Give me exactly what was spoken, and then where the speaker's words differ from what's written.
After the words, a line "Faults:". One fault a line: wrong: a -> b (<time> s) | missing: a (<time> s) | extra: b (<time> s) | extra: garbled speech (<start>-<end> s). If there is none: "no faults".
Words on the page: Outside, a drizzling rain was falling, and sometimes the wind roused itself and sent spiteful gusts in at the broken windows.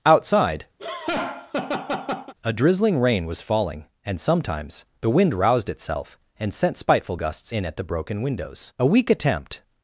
Outside, a drizzling rain was falling, and sometimes the wind roused itself and sent spiteful gusts in at the broken windows. A weak attempt
Faults:
extra: A weak attempt (8.8 s)